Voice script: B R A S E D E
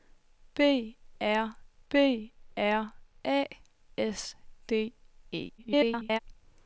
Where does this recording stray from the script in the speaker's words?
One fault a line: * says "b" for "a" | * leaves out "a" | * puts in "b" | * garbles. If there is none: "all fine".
* puts in "b R"
* leaves out "E"
* garbles